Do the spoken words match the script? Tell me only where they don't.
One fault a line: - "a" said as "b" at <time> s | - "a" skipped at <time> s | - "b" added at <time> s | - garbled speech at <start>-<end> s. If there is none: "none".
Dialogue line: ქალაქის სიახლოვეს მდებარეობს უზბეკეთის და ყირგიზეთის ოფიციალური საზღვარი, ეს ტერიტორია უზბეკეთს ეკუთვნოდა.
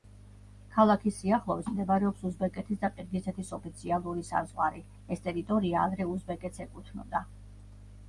- "ადრე" added at 5.9 s